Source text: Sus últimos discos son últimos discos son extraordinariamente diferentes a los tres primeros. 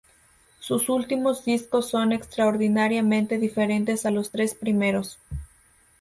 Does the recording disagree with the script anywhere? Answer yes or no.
yes